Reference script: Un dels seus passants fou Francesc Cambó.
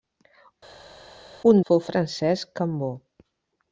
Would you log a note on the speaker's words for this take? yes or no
yes